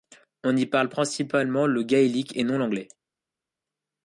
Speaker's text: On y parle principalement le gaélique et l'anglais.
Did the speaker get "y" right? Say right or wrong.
right